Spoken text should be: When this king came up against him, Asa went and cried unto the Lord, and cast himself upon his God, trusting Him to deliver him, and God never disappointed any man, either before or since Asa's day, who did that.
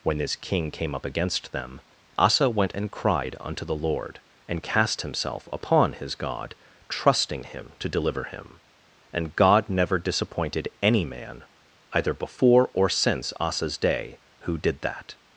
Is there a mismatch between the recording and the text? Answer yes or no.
yes